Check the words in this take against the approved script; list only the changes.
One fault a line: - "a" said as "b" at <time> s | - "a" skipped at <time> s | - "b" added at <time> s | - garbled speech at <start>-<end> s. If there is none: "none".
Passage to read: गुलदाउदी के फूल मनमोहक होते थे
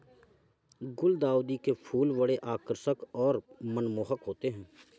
- "बड़े आकर्षक और" added at 2.2 s
- "थे" said as "हैं" at 4.5 s